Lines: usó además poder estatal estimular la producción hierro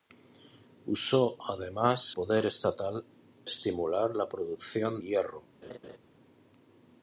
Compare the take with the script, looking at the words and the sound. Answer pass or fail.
fail